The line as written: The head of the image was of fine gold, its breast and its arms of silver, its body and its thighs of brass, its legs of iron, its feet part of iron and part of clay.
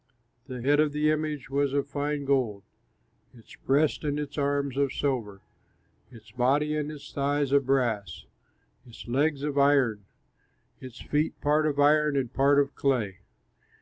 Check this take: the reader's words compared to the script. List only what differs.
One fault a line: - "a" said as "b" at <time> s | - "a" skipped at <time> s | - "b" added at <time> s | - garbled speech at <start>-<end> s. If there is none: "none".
none